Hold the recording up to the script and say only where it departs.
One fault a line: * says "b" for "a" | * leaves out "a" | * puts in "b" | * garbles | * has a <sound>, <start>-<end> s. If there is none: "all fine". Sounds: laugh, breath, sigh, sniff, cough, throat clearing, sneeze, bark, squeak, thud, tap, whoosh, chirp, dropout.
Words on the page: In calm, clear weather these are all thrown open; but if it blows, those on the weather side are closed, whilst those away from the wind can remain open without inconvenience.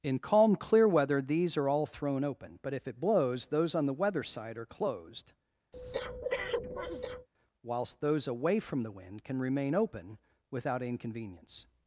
* has a breath, 5.7-7.3 s